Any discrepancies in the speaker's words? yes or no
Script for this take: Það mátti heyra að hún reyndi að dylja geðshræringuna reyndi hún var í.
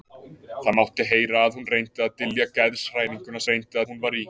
no